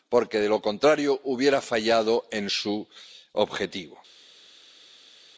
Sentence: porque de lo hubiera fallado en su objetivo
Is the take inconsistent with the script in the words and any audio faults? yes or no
yes